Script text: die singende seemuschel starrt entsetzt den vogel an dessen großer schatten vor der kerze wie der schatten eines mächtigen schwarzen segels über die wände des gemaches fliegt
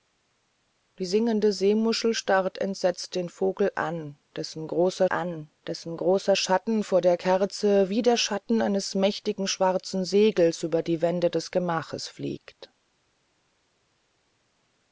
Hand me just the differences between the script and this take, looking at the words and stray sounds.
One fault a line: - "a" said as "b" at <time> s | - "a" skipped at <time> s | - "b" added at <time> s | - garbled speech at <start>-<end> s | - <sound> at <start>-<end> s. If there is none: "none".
- "an dessen großer" added at 5.1 s